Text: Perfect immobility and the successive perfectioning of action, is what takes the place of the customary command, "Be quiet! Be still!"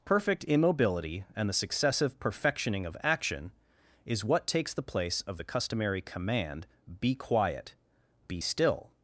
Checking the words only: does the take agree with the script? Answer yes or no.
yes